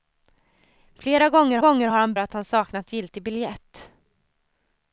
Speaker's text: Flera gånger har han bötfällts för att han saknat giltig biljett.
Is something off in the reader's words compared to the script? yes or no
yes